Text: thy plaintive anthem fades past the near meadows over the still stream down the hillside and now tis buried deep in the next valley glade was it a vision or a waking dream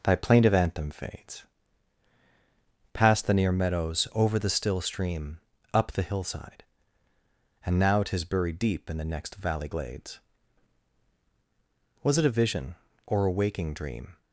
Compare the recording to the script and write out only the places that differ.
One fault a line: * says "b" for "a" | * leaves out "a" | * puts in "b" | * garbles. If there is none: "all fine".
* says "up" for "down"
* says "glades" for "glade"